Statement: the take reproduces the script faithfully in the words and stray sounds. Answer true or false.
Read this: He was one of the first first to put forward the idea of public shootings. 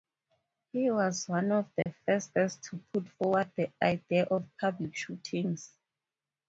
false